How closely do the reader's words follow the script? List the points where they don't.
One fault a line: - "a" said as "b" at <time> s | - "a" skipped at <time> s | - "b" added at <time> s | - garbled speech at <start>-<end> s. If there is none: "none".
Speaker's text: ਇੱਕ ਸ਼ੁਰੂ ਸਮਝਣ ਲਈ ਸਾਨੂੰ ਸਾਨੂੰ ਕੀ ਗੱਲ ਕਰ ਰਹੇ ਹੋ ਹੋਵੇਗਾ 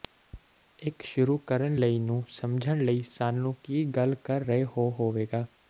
- "ਕਰਨ ਲਈ ਨੂੰ" added at 1.4 s
- "ਸਾਨੂੰ" skipped at 3.5 s